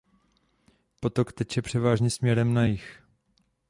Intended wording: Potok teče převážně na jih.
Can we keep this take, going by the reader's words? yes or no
no